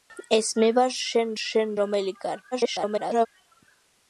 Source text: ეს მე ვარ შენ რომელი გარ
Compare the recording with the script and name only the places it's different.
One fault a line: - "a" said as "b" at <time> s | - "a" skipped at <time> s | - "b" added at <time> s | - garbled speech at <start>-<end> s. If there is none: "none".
- "შენ" added at 1.4 s
- garbled speech at 2.5-3.3 s